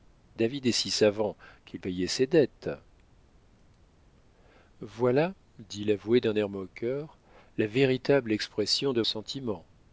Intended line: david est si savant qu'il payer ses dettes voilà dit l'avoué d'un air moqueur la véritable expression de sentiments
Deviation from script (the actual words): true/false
false